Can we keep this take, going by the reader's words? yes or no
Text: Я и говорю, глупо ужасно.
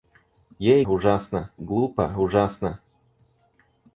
no